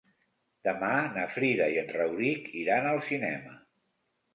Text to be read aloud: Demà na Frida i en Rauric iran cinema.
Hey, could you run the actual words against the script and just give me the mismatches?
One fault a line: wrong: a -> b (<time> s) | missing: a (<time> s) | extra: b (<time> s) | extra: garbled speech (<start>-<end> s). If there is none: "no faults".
extra: al (3.0 s)